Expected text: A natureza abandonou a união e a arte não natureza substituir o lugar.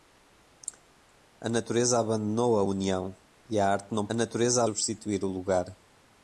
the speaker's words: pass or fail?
pass